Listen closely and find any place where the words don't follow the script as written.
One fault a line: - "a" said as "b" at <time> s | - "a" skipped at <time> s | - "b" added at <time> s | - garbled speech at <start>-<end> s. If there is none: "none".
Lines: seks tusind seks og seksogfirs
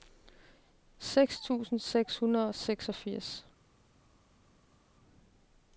- "hundrede" added at 2.2 s